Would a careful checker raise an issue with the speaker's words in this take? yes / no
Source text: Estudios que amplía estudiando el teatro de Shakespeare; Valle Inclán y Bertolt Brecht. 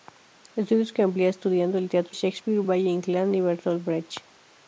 yes